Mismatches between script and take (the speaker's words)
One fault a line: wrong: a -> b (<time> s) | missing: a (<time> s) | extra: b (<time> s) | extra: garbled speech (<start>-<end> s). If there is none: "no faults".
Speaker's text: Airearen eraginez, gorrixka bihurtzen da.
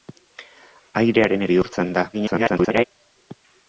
missing: eraginez gorrixka (1.4 s)
extra: garbled speech (2.1-2.8 s)